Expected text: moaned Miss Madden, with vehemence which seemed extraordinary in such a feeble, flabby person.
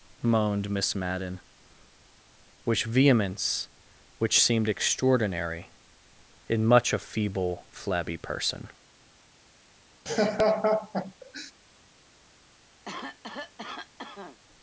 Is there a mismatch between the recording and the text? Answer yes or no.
yes